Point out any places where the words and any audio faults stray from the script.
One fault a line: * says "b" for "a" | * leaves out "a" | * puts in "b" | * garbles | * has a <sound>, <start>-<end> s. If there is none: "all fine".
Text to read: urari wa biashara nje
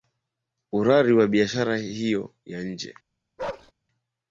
* puts in "hiyo ya"
* has a bark, 3.4-3.7 s